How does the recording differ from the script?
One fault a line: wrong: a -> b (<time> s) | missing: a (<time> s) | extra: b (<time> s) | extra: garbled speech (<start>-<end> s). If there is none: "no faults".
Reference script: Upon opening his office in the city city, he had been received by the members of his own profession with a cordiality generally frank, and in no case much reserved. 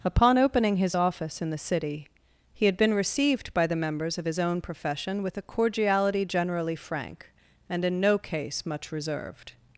missing: city (2.1 s)